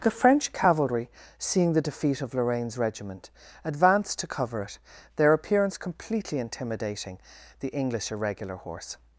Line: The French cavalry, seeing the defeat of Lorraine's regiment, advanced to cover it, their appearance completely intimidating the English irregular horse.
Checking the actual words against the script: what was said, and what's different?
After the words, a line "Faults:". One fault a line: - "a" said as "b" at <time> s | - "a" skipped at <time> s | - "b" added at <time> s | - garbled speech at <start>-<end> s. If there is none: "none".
The French cavalry, seeing the defeat of Lorraine's regiment, advanced to cover it, their appearance completely intimidating the English irregular horse.
Faults:
none